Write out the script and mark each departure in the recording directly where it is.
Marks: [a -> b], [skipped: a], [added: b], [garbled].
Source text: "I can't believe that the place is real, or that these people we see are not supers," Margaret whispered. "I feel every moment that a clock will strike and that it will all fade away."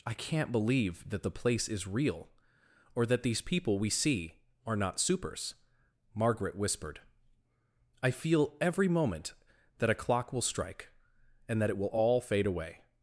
"I can't believe that the place is real, or that these people we see are not supers," Margaret whispered. "I feel every moment that a clock will strike and that it will all fade away."